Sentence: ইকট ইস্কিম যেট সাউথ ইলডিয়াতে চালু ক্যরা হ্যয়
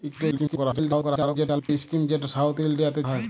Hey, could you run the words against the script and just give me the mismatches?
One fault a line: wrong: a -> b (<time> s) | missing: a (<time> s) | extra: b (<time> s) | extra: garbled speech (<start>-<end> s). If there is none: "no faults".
extra: garbled speech (0.3-1.7 s)
missing: চালু ক্যরা (3.0 s)